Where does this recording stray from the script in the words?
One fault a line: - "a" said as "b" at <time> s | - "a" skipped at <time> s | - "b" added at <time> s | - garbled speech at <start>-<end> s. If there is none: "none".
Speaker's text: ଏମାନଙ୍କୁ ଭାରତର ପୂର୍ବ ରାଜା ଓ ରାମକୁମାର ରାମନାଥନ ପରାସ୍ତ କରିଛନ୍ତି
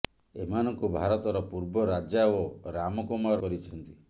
- "ରାମନାଥନ ପରାସ୍ତ" skipped at 3.4 s